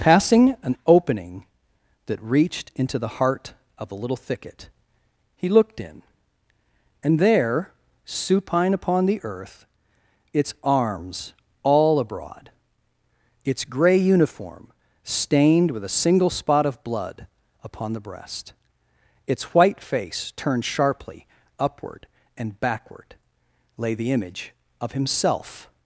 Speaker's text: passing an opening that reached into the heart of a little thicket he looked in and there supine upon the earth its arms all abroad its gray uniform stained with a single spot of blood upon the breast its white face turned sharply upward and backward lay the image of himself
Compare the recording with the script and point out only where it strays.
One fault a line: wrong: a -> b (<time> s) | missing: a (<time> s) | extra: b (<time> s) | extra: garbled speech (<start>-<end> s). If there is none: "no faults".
no faults